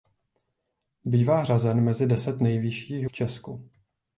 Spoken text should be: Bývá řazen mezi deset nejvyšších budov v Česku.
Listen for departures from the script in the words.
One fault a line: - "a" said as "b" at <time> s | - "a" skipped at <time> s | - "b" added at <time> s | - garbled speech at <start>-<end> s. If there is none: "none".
- "budov" skipped at 3.1 s